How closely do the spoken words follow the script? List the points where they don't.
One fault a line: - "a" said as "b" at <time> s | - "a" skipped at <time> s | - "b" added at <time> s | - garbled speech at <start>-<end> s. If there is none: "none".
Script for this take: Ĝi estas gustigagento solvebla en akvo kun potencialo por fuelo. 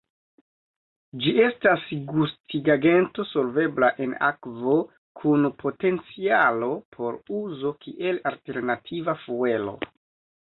- "uzo kiel alternativa" added at 7.4 s